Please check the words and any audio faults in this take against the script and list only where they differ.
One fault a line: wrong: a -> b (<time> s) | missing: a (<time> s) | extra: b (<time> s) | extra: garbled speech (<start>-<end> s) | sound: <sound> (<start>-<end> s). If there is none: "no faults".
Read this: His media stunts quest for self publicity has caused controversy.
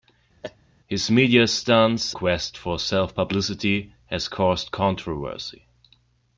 sound: laugh (0.4-0.6 s)